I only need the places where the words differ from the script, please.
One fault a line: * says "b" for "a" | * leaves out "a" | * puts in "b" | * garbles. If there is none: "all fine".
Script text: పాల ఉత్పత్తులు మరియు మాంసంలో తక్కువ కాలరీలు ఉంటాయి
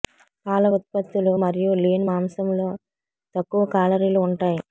* puts in "లీన్"